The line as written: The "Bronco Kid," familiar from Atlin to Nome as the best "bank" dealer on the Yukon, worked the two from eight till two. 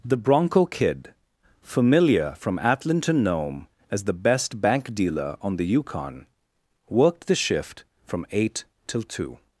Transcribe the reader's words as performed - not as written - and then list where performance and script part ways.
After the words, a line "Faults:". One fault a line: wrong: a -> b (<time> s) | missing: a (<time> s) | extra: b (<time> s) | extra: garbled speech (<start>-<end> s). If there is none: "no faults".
The "Bronco Kid," familiar from Atlin to Nome as the best "bank" dealer on the Yukon, worked the shift from eight till two.
Faults:
wrong: two -> shift (7.3 s)